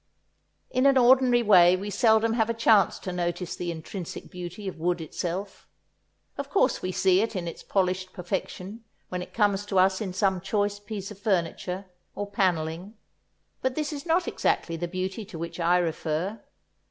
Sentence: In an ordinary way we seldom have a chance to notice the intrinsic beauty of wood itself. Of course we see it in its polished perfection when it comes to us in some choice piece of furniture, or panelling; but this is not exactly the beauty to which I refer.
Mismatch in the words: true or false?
false